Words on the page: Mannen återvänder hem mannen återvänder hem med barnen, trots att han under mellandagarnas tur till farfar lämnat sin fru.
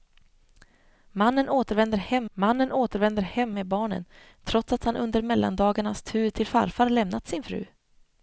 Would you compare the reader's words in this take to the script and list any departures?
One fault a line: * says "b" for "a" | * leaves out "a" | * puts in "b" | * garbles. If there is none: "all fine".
all fine